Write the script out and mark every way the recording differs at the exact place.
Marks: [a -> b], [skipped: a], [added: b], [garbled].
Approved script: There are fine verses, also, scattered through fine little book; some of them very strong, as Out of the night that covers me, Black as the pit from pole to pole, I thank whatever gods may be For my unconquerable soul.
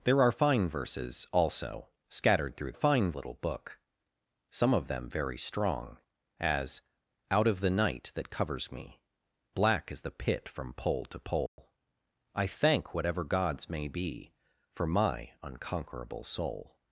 There are fine verses, also, scattered through fine little book; some of them very strong, as Out of the night that covers me, Black as the pit from pole to pole, I thank whatever gods may be For my unconquerable soul.